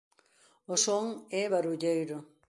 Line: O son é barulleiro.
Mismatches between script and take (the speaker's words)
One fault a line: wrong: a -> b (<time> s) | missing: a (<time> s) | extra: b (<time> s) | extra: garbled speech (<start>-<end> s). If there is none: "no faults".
no faults